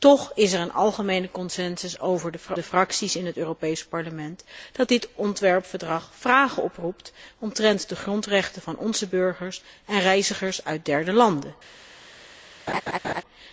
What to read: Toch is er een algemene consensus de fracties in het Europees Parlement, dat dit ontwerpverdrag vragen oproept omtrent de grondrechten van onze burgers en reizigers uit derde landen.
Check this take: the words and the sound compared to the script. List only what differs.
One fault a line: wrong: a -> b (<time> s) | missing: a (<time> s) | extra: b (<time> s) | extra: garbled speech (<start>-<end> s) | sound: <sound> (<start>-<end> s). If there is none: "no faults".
sound: laugh (12.7-13.2 s)